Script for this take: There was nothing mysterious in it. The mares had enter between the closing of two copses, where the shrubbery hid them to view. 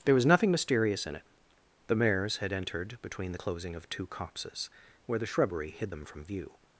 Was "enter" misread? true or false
true